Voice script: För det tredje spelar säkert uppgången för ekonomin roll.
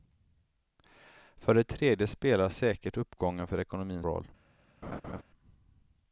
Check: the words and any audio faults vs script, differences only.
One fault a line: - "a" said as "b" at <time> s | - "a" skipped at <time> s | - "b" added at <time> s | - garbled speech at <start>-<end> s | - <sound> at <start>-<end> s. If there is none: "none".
- laugh at 4.8-5.2 s